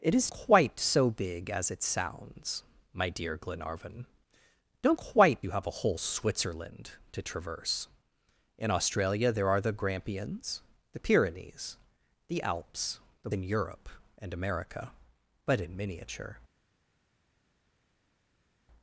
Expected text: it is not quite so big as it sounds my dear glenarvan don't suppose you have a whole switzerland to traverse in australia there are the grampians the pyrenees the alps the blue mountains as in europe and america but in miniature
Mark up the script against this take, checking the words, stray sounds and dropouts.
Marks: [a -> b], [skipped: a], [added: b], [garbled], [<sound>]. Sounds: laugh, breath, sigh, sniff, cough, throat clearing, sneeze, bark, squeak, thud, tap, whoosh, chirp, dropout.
it is [skipped: not] quite so big as it sounds my dear glenarvan don't [suppose -> quite] you have a whole switzerland to traverse in australia there are the grampians the pyrenees the alps the [skipped: blue mountains as] in europe and america but in miniature